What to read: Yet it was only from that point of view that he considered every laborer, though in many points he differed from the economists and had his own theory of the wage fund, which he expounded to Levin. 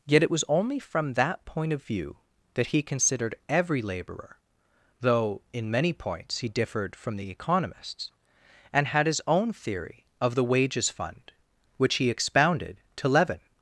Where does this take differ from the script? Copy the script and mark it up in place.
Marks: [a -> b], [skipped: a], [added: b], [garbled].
Yet it was only from that point of view that he considered every laborer, though in many points he differed from the economists and had his own theory of the [wage -> wages] fund, which he expounded to Levin.